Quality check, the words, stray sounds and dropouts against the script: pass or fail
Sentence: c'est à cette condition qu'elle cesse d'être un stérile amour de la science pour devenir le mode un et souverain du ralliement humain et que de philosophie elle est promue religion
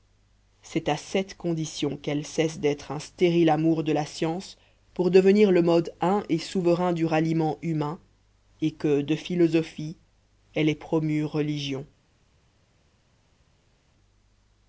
pass